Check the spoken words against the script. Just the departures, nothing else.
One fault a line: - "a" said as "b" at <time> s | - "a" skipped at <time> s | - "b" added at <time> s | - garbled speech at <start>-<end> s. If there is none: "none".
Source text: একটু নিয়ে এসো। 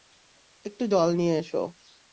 - "জল" added at 0.9 s